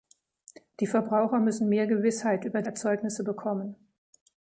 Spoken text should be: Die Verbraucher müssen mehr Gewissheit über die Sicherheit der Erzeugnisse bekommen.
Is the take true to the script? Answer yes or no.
no